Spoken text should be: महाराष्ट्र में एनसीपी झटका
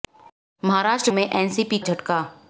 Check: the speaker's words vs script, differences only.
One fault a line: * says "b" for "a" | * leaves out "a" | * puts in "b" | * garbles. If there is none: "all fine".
all fine